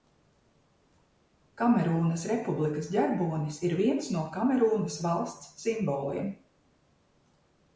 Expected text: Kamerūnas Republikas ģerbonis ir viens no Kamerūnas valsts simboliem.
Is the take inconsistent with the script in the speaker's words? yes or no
no